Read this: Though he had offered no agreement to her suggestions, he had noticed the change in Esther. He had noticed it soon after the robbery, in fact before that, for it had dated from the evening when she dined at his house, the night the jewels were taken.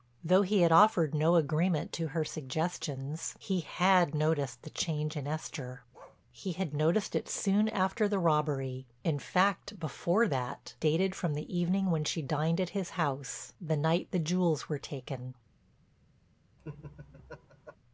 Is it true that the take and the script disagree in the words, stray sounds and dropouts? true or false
true